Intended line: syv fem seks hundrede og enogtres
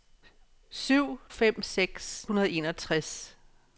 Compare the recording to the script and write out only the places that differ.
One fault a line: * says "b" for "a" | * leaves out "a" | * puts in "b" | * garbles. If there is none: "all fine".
all fine